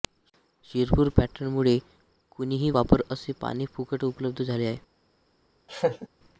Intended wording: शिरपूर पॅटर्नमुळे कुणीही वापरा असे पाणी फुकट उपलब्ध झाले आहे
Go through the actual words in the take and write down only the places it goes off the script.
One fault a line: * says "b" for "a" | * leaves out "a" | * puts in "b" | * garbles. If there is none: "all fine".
all fine